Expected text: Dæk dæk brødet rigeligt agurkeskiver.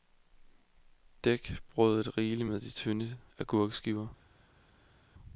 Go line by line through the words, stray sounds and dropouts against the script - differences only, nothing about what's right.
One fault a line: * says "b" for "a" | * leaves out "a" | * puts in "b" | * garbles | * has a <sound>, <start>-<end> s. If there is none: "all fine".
* leaves out "dæk"
* puts in "med de tynde"